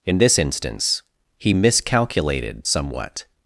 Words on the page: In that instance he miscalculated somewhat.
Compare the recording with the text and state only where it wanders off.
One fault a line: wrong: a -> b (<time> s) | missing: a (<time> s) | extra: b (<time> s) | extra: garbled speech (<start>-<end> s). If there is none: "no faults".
wrong: that -> this (0.2 s)